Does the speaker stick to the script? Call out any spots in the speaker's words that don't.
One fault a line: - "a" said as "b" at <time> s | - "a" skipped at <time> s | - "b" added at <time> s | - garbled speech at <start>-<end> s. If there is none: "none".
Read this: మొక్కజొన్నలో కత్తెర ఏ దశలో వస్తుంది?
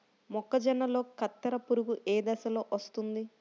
- "పురుగు" added at 1.7 s